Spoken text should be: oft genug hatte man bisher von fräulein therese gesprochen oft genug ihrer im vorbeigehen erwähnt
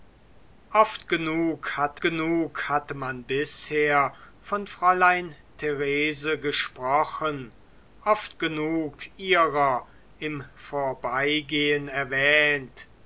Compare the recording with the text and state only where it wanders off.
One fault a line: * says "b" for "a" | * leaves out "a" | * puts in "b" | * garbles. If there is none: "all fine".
* puts in "genug hatte"